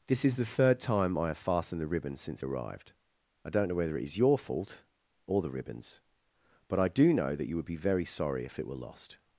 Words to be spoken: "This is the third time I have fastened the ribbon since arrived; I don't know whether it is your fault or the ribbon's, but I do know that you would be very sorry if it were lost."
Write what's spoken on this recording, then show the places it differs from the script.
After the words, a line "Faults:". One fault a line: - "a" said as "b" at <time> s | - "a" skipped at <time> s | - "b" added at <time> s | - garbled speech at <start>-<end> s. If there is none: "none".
"This is the third time I have fastened the ribbon since arrived; I don't know whether it is your fault or the ribbon's, but I do know that you would be very sorry if it were lost."
Faults:
none